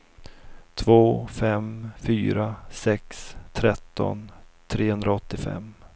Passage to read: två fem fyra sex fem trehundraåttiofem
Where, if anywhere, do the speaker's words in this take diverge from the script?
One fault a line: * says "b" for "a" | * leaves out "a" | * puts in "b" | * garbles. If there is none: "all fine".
* says "tretton" for "fem"